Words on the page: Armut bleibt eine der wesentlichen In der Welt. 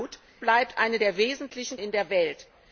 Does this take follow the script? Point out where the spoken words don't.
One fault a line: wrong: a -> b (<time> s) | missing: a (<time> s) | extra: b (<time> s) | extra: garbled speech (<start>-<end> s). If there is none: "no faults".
no faults